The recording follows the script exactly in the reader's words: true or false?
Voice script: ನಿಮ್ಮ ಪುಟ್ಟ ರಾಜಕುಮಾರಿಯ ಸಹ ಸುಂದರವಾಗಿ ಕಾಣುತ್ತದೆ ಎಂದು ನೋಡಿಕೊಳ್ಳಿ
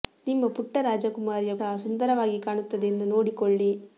true